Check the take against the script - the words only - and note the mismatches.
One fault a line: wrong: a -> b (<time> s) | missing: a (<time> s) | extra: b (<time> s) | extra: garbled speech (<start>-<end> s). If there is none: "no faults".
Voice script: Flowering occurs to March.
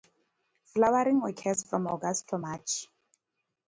extra: from August (1.6 s)